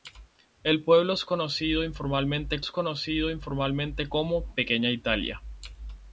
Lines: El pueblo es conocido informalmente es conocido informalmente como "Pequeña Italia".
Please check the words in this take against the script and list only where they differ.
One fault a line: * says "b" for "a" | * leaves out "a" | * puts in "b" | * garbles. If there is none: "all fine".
all fine